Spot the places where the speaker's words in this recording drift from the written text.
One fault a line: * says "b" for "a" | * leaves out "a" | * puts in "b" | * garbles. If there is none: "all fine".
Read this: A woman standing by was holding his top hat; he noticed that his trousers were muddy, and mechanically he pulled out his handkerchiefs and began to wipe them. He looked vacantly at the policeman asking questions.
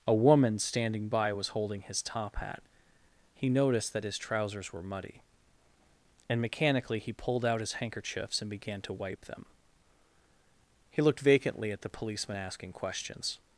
all fine